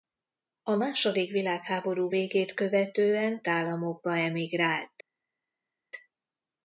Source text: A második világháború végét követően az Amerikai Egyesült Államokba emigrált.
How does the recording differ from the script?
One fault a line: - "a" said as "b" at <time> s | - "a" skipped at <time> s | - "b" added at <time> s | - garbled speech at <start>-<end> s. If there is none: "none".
- "az Amerikai Egyesült" skipped at 3.4 s